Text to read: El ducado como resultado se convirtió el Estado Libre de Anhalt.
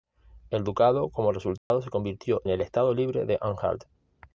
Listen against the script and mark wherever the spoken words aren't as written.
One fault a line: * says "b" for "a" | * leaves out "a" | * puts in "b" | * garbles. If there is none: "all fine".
all fine